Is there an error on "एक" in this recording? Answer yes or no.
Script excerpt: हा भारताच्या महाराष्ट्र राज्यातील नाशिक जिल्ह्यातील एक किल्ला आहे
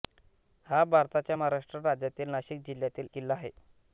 yes